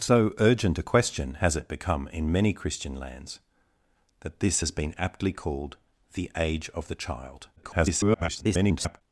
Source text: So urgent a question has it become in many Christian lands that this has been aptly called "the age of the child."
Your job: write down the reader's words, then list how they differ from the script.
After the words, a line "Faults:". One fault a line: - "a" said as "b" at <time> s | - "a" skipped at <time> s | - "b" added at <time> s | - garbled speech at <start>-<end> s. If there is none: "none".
So urgent a question has it become in many Christian lands that this has been aptly called "the age of the child." [garbled]
Faults:
- garbled speech at 7.6-9.0 s